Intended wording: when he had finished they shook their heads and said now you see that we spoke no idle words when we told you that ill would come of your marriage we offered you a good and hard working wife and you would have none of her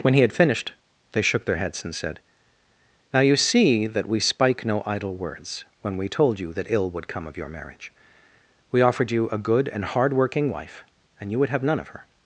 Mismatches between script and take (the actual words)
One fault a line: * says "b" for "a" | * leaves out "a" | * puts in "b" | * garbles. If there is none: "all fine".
* says "spike" for "spoke"